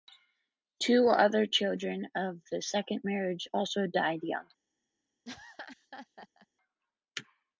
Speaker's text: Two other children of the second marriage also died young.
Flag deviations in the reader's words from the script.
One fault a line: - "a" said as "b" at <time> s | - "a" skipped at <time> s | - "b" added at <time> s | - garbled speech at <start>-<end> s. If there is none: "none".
none